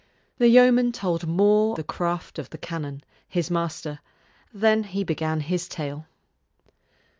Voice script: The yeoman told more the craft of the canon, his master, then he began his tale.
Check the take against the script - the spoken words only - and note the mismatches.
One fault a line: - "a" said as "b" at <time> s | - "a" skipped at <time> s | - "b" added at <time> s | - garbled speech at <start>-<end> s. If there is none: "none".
none